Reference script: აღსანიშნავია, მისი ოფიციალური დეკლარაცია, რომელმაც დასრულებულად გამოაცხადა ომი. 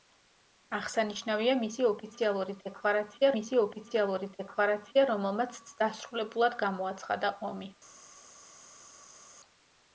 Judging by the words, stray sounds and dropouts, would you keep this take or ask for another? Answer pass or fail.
fail